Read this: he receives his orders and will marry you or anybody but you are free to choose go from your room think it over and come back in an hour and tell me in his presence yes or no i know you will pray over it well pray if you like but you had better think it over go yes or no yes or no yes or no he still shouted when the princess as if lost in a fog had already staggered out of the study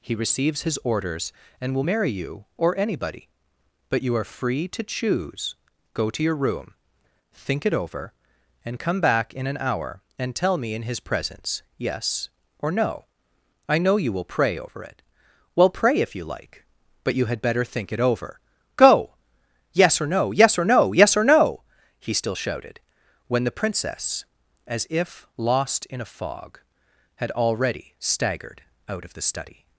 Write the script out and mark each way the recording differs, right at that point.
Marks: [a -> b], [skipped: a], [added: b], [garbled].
he receives his orders and will marry you or anybody but you are free to choose go [from -> to] your room think it over and come back in an hour and tell me in his presence yes or no i know you will pray over it well pray if you like but you had better think it over go yes or no yes or no yes or no he still shouted when the princess as if lost in a fog had already staggered out of the study